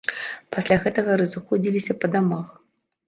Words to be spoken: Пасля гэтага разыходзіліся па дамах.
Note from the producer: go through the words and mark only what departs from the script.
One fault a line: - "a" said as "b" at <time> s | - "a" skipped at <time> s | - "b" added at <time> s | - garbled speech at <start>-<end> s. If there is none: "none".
none